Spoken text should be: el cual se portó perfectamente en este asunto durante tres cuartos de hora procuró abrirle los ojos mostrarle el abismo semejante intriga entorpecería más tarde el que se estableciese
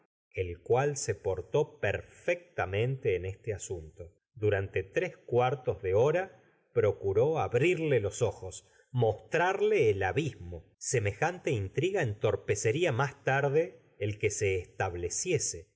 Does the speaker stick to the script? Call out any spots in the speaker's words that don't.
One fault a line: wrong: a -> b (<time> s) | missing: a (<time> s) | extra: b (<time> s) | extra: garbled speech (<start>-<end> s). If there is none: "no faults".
no faults